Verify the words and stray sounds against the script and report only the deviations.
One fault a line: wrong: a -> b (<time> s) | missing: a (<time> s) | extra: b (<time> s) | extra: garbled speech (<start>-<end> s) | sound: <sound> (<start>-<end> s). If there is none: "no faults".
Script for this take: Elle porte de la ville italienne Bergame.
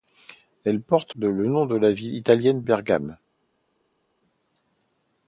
no faults